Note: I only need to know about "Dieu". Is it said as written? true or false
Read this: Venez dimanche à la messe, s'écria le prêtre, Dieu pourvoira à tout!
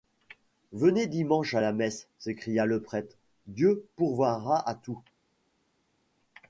true